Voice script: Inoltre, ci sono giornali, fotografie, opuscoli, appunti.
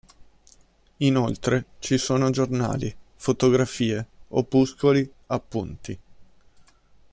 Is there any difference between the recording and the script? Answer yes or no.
no